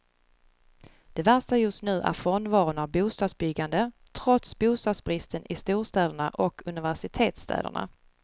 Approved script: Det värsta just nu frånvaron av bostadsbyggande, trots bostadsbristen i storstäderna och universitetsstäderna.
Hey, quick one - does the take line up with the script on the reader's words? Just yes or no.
no